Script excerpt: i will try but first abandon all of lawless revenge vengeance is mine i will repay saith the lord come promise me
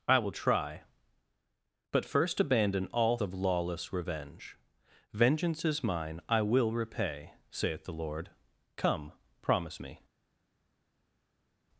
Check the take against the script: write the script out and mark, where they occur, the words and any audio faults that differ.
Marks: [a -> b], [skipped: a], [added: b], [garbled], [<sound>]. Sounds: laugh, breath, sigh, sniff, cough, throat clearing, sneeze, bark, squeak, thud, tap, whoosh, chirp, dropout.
i will try but first abandon all of lawless revenge vengeance is mine i will repay saith the lord come promise me